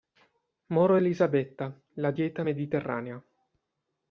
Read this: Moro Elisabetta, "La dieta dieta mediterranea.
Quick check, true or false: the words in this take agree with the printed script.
false